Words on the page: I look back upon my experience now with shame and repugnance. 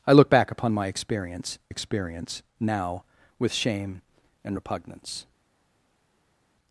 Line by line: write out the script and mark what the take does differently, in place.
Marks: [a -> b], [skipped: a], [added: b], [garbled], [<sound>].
I look back upon my experience [added: experience] now with shame and repugnance.